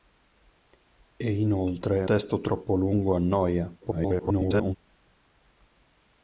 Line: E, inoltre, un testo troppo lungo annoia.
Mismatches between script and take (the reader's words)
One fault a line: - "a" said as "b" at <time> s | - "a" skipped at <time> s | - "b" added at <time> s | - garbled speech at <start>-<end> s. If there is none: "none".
- "un" skipped at 2.0 s
- garbled speech at 3.8-4.8 s